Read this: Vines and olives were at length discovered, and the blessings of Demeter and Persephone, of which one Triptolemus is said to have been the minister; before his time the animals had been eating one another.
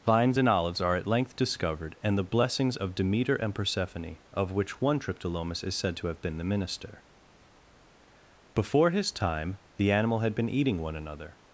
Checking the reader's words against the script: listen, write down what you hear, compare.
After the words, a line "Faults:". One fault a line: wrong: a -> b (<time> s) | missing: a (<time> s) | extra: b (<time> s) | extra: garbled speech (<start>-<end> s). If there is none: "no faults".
Vines and olives are at length discovered, and the blessings of Demeter and Persephone, of which one Triptolemus is said to have been the minister; before his time the animal had been eating one another.
Faults:
wrong: were -> are (0.8 s)
wrong: animals -> animal (9.9 s)